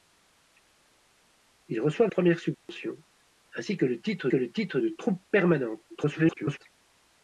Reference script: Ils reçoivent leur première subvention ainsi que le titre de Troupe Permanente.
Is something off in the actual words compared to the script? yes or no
yes